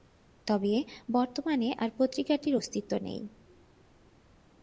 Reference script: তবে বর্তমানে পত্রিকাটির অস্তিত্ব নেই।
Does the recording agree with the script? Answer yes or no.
no